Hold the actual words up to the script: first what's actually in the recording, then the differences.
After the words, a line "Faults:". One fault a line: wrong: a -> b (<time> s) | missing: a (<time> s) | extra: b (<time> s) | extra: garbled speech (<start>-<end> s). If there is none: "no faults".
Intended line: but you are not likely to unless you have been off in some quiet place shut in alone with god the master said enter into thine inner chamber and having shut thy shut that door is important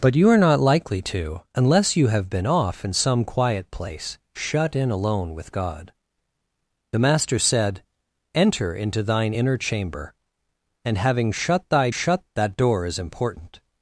but you are not likely to unless you have been off in some quiet place shut in alone with god the master said enter into thine inner chamber and having shut thy shut that door is important
Faults:
no faults